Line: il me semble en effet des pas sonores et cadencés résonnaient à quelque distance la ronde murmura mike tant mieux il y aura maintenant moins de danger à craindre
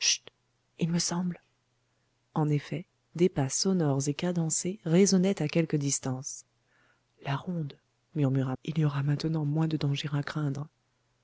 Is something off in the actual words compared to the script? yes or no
yes